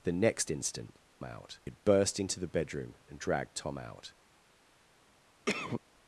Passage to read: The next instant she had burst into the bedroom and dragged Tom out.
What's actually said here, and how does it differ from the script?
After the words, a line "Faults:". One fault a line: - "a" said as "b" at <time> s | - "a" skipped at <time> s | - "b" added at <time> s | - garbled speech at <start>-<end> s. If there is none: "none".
The next instant out had burst into the bedroom and dragged Tom out.
Faults:
- "she" said as "out" at 1.2 s